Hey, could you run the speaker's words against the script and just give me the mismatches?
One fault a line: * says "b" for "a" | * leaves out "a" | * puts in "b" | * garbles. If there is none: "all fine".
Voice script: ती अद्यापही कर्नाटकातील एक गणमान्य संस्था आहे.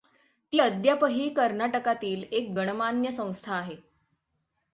all fine